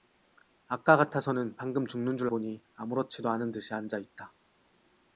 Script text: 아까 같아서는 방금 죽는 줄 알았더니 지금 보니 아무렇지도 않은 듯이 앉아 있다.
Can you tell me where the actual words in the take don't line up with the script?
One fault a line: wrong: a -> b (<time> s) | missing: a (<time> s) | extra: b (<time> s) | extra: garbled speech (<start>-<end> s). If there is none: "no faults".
missing: 알았더니 지금 (2.3 s)